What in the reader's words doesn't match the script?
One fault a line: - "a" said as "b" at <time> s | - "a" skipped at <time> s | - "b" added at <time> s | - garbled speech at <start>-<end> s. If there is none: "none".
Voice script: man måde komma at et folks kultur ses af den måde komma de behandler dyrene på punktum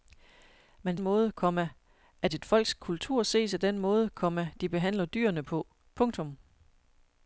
none